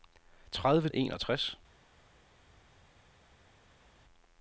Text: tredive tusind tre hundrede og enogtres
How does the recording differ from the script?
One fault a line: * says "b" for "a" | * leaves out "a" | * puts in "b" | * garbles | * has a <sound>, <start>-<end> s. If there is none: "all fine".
* leaves out "tusind tre hundrede"